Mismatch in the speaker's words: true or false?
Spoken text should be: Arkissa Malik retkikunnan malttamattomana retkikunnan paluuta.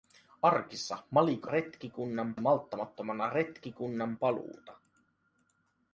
false